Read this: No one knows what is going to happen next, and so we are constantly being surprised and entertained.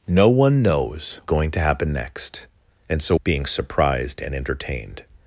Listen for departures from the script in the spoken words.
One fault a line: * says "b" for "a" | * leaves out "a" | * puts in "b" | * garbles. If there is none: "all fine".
* leaves out "what is"
* leaves out "we are constantly"